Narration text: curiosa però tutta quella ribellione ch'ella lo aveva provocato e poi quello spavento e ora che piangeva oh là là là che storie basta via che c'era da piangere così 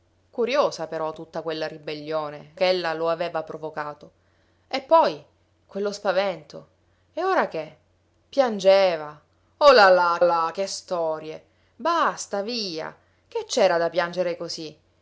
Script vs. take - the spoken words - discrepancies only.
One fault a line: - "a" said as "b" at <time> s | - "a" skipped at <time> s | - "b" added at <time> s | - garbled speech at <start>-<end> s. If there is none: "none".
none